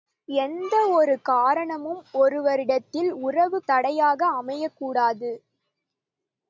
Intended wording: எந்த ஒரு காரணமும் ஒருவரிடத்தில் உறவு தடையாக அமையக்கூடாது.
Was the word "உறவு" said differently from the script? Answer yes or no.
no